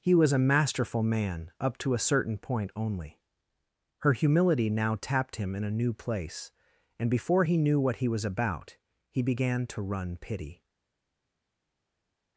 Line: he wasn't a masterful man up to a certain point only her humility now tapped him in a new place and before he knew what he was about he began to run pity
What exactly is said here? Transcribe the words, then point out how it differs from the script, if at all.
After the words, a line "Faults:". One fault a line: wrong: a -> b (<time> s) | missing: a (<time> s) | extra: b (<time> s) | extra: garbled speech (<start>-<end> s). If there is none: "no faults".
he was a masterful man up to a certain point only her humility now tapped him in a new place and before he knew what he was about he began to run pity
Faults:
wrong: wasn't -> was (0.1 s)